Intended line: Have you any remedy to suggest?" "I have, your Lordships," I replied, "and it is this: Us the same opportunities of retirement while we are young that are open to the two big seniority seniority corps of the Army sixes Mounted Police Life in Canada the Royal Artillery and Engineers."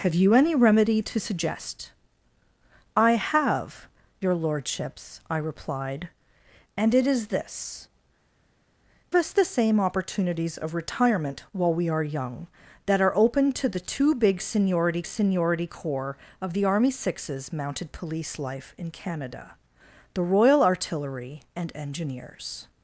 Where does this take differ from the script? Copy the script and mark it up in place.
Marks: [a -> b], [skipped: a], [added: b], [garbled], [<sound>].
Have you any remedy to suggest?" "I have, your Lordships," I replied, "and it is this: Us the same opportunities of retirement while we are young that are open to the two big seniority seniority corps of the Army sixes Mounted Police Life in Canada the Royal Artillery and Engineers."